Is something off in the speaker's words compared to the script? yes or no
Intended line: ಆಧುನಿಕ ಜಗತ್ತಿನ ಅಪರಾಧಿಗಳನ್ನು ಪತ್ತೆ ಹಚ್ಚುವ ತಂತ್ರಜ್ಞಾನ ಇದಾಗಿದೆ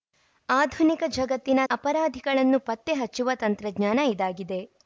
no